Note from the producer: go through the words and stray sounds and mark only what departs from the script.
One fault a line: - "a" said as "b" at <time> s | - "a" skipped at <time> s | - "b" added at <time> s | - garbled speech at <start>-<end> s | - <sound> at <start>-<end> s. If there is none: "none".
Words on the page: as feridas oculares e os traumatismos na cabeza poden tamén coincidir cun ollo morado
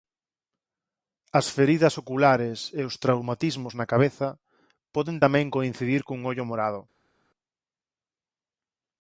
none